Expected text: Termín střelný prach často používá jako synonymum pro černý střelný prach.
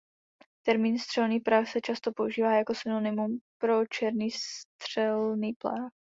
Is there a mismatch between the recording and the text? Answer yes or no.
yes